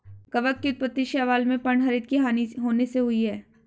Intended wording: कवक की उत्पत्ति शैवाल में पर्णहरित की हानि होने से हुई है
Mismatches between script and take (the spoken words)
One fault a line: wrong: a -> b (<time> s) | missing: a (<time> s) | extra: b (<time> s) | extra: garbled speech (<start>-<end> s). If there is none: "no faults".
no faults